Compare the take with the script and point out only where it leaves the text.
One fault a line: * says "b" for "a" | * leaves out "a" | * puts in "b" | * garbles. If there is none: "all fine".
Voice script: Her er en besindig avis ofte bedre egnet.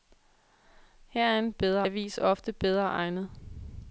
* says "bedre" for "besindig"